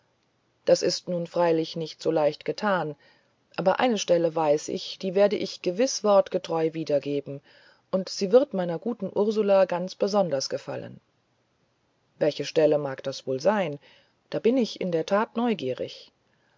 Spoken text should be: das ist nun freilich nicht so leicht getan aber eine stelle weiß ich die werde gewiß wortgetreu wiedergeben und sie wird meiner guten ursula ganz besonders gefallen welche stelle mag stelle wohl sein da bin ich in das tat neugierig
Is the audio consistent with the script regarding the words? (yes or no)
no